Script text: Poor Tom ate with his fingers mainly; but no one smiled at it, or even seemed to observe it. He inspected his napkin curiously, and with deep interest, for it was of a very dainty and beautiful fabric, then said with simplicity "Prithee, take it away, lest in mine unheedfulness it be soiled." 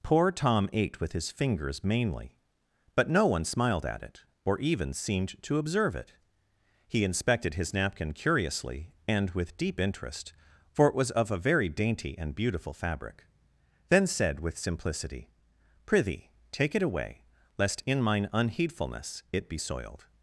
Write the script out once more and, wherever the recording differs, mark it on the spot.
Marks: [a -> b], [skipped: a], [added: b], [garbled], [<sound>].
Poor Tom ate with his fingers mainly; but no one smiled at it, or even seemed to observe it. He inspected his napkin curiously, and with deep interest, for it was of a very dainty and beautiful fabric, then said with simplicity "Prithee, take it away, lest in mine unheedfulness it be soiled."